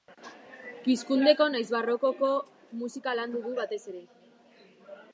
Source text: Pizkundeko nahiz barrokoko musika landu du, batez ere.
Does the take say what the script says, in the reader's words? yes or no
yes